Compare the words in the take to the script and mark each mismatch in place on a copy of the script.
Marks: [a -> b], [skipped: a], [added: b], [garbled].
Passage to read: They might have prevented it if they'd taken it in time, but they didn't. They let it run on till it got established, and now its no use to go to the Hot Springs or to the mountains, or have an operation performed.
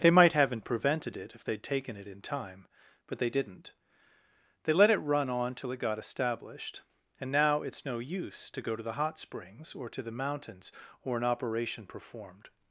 They might [have -> haven't] prevented it if they'd taken it in time, but they didn't. They let it run on till it got established, and now its no use to go to the Hot Springs or to the mountains, or [skipped: have] an operation performed.